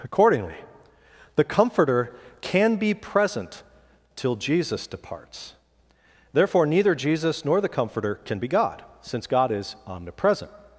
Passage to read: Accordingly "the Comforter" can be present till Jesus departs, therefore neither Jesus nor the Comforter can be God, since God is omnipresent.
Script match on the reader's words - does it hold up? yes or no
yes